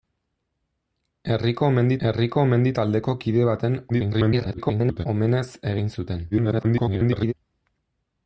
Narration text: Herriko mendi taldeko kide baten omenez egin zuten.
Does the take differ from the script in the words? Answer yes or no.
yes